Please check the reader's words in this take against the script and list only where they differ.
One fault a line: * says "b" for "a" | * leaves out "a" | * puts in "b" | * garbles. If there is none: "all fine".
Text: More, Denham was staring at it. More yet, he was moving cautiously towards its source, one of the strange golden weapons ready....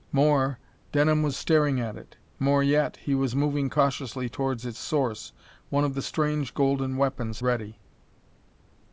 all fine